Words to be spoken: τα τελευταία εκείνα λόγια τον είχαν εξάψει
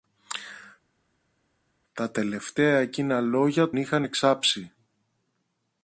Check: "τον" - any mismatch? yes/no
yes